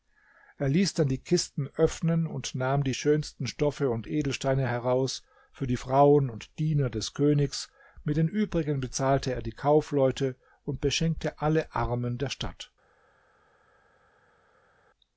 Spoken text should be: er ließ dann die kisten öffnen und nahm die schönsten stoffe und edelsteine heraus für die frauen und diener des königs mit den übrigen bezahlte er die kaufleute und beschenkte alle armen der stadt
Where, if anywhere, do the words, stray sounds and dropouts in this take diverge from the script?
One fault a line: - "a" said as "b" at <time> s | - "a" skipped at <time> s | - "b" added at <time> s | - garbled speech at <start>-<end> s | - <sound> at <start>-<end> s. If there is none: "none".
none